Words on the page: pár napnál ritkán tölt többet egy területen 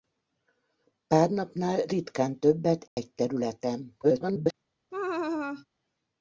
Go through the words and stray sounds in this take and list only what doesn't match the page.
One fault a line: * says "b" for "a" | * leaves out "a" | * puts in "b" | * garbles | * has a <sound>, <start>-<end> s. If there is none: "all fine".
* leaves out "tölt"
* has a dropout, 2.9-3.0 s
* garbles
* has a laugh, 4.9-5.7 s